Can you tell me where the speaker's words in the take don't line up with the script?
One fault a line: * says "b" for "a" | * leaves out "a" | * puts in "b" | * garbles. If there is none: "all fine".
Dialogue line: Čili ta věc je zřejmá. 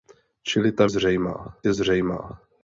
* says "zřejmá" for "věc"